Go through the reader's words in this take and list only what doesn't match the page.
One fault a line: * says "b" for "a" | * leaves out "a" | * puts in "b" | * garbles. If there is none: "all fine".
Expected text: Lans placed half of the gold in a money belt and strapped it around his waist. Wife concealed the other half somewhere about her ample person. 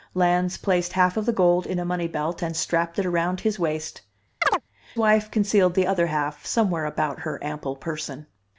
all fine